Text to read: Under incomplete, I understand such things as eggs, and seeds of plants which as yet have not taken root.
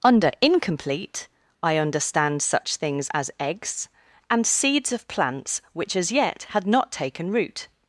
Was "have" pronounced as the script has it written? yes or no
no